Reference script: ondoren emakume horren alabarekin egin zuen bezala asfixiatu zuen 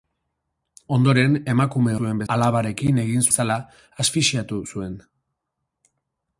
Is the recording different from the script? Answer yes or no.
yes